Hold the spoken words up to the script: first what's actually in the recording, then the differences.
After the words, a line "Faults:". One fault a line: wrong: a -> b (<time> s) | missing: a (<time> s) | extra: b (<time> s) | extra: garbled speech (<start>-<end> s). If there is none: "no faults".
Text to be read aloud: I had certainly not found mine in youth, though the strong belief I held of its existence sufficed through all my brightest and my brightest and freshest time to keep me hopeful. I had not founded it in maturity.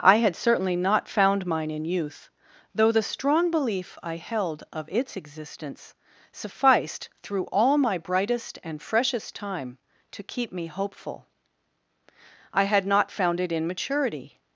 I had certainly not found mine in youth, though the strong belief I held of its existence sufficed through all my brightest and freshest time to keep me hopeful. I had not found it in maturity.
Faults:
missing: my brightest and (8.8 s)
wrong: founded -> found (13.1 s)